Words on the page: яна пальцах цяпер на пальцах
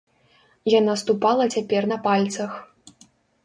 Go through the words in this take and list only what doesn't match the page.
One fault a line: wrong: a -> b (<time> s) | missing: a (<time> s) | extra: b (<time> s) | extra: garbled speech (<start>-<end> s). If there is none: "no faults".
wrong: пальцах -> ступала (1.0 s)